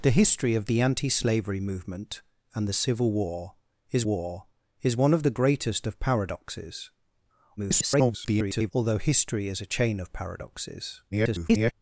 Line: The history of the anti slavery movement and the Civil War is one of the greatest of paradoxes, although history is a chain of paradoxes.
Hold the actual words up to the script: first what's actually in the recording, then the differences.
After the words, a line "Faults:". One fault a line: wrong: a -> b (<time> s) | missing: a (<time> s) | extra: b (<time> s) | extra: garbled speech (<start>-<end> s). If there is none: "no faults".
The history of the anti slavery movement and the Civil War is War is one of the greatest of paradoxes, [garbled] although history is a chain of paradoxes. [garbled]
Faults:
extra: War is (4.0 s)
extra: garbled speech (7.6-8.7 s)
extra: garbled speech (11.1-11.7 s)